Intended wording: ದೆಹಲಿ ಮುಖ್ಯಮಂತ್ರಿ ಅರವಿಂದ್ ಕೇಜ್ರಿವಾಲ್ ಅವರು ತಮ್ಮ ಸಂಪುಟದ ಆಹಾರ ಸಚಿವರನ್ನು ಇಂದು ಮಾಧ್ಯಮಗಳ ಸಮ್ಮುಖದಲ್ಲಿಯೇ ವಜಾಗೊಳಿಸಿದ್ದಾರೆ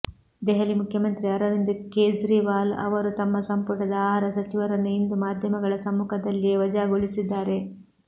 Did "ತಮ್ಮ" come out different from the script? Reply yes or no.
no